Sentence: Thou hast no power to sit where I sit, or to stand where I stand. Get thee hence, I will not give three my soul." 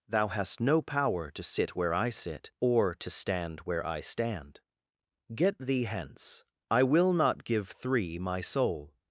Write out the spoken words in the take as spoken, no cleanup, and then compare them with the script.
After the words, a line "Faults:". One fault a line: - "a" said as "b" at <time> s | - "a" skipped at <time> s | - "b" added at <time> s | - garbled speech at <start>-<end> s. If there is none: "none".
Thou hast no power to sit where I sit, or to stand where I stand. Get thee hence, I will not give three my soul."
Faults:
none